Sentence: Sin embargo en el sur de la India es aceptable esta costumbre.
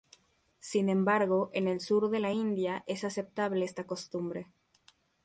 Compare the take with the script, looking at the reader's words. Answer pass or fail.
pass